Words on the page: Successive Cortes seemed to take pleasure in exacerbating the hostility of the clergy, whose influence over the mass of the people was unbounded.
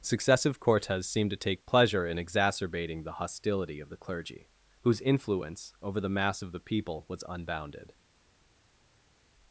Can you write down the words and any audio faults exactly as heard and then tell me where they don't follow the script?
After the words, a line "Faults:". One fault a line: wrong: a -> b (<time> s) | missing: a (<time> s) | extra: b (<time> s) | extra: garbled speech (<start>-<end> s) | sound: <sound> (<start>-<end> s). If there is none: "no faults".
Successive Cortes seemed to take pleasure in exacerbating the hostility of the clergy, whose influence over the mass of the people was unbounded.
Faults:
no faults